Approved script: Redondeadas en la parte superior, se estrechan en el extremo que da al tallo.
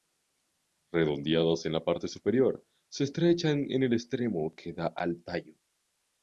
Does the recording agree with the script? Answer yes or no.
yes